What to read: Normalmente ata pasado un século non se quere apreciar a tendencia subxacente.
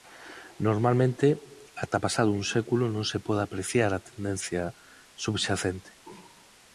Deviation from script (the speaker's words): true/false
true